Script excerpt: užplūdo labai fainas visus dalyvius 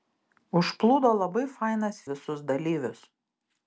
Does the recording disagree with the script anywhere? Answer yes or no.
no